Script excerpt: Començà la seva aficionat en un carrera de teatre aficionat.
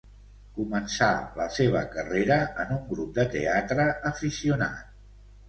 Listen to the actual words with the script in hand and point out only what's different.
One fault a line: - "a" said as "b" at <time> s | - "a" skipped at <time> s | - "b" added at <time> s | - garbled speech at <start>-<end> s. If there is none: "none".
- "aficionat" said as "carrera" at 2.0 s
- "carrera" said as "grup" at 2.9 s